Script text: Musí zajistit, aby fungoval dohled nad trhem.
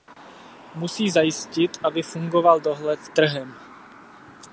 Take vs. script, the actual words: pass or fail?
fail